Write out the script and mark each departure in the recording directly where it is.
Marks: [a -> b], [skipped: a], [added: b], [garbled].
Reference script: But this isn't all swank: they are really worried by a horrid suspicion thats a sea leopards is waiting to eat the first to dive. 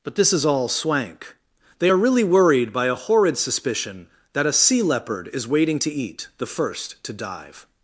But this [isn't -> is] all swank: they are really worried by a horrid suspicion [thats -> that] a sea [leopards -> leopard] is waiting to eat the first to dive.